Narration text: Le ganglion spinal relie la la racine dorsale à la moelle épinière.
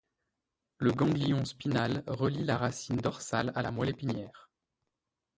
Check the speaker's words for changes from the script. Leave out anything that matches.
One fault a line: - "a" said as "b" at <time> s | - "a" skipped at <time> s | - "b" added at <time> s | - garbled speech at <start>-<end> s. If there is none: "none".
- "la" skipped at 2.6 s